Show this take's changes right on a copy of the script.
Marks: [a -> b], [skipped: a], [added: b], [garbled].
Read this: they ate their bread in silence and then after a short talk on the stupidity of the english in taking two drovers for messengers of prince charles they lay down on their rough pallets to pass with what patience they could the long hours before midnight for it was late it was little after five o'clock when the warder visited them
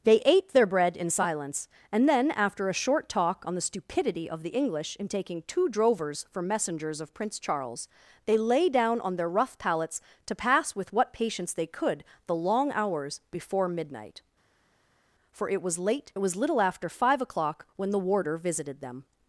they ate their bread in silence and then after a short talk on the stupidity of the english in taking two drovers for messengers of prince charles they lay down on their rough pallets to pass with what patience they could the long hours before midnight for it was late it was little after five o'clock when the warder visited them